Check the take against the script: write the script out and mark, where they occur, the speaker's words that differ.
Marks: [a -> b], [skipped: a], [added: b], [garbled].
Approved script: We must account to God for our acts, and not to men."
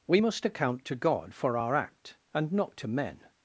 We must account to God for our [acts, -> act] and not to men."